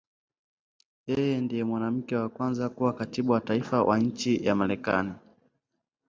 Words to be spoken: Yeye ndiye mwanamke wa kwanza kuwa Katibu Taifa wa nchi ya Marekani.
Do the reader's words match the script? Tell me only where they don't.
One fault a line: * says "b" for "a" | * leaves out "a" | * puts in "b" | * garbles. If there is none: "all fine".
* puts in "wa"